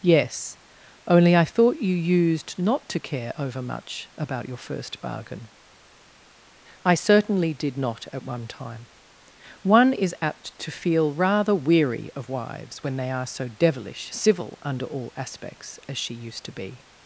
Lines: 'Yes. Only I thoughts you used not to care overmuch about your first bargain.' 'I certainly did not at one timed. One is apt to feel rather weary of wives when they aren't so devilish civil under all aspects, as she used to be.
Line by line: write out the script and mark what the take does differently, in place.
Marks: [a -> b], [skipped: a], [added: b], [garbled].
'Yes. Only I [thoughts -> thought] you used not to care overmuch about your first bargain.' 'I certainly did not at one [timed. -> time] One is apt to feel rather weary of wives when they [aren't -> are] so devilish civil under all aspects, as she used to be.